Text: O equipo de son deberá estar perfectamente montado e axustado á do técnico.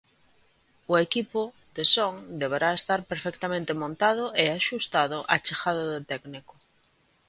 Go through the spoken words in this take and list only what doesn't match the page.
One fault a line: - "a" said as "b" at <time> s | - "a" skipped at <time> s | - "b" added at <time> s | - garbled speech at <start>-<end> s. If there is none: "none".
- "chegada" added at 5.5 s